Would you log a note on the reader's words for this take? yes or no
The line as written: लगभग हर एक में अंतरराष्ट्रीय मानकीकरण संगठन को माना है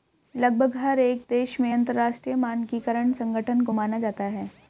yes